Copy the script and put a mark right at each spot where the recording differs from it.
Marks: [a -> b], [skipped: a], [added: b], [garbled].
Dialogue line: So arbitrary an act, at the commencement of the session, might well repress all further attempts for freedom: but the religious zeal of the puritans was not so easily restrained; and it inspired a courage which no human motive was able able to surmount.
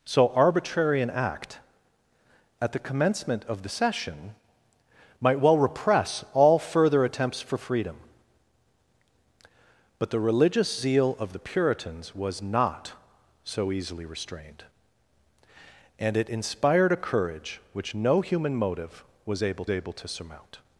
So arbitrary an act, at the commencement of the session, might well repress all further attempts for freedom: but the religious zeal of the puritans was not so easily restrained; and it inspired a courage which no human motive was able able to surmount.